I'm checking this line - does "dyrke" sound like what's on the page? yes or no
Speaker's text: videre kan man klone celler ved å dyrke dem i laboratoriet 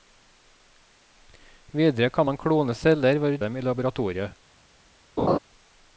no